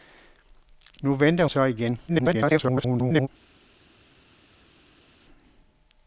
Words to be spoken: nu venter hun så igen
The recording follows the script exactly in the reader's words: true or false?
false